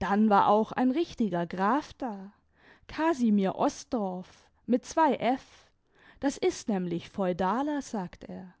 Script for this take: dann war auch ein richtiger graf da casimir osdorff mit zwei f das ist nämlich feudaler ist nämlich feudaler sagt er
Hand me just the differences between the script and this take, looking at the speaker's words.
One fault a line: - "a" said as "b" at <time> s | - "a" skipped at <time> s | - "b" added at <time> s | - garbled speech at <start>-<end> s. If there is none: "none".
- "ist nämlich feudaler" skipped at 7.8 s